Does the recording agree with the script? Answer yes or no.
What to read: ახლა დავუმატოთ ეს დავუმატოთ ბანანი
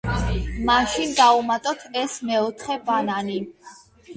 no